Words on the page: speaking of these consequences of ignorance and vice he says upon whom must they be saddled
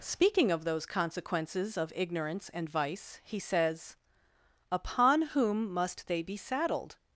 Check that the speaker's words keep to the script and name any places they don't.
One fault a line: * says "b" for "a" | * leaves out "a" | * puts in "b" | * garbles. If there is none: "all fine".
* says "those" for "these"